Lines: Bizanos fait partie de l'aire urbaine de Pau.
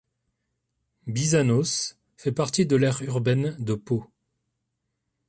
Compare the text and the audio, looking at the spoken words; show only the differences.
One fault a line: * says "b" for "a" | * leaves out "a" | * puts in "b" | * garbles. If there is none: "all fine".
all fine